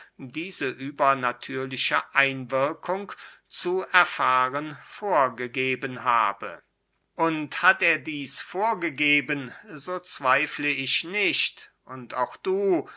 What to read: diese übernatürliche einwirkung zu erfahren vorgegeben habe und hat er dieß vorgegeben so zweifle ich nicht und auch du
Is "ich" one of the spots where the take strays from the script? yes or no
no